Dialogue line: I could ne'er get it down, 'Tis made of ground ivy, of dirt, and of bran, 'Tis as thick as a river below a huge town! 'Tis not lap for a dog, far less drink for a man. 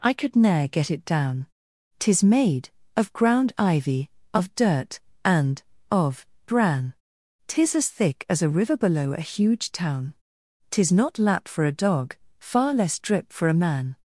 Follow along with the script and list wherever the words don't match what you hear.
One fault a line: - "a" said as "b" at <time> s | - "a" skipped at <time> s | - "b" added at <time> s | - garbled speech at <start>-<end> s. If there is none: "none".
- "drink" said as "drip" at 13.0 s